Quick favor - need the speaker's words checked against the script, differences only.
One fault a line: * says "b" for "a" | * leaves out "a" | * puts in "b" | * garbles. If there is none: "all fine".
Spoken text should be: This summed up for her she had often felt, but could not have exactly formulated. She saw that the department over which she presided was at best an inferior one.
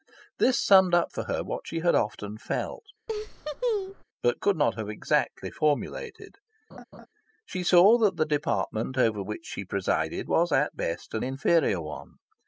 * puts in "what"